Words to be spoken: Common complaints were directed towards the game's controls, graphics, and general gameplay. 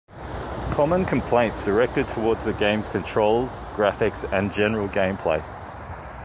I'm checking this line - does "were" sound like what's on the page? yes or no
no